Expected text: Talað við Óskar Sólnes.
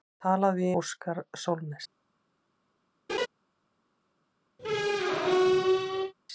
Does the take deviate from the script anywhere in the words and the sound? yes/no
yes